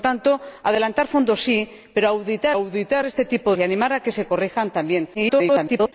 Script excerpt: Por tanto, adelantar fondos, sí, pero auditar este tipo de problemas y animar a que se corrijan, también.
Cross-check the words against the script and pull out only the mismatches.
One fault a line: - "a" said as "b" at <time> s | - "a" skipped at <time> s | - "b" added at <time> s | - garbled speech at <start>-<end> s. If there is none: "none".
- "auditar" added at 2.5 s
- "de problemas" skipped at 3.5 s
- garbled speech at 5.1-5.9 s